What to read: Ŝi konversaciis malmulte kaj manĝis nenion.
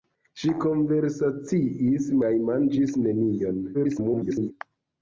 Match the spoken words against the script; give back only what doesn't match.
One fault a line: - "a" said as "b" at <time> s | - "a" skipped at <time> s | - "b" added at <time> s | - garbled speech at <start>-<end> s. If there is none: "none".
- "malmulte" skipped at 2.1 s
- garbled speech at 3.7-4.5 s